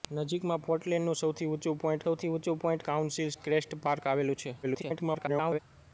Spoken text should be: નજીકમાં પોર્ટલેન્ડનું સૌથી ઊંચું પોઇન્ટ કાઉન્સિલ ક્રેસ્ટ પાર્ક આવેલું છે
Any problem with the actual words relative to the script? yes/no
yes